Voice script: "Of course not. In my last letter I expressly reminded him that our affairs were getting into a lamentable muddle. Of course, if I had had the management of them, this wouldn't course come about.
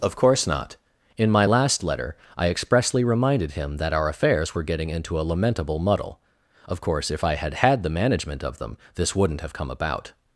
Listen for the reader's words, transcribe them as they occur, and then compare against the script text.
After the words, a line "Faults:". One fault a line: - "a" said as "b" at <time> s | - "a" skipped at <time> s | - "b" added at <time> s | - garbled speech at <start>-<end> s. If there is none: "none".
"Of course not. In my last letter I expressly reminded him that our affairs were getting into a lamentable muddle. Of course, if I had had the management of them, this wouldn't have come about.
Faults:
- "course" said as "have" at 9.4 s